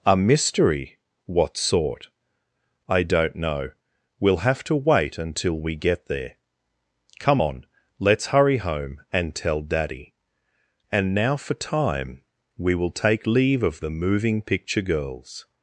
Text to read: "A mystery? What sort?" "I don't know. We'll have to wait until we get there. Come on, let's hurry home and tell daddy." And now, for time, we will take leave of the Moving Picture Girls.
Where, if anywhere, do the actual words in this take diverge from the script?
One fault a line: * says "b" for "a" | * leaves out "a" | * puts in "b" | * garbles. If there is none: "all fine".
all fine